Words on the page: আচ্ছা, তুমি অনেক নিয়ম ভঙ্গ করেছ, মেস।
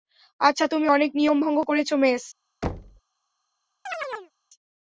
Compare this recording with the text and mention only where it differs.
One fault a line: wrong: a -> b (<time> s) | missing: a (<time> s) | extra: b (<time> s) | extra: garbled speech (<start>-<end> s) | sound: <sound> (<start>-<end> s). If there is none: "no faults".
sound: thud (2.6-3.0 s)
sound: chirp (3.9-4.3 s)